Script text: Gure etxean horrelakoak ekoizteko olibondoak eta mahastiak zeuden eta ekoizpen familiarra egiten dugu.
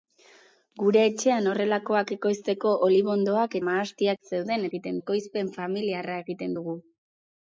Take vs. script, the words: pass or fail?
fail